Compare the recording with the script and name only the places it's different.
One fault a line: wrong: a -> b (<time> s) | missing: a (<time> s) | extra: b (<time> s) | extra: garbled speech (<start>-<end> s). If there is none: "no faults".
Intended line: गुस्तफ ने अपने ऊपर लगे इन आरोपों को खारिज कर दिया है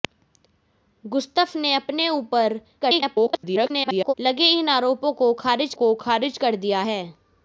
extra: garbled speech (2.8-4.1 s)
extra: को खारिज (5.7 s)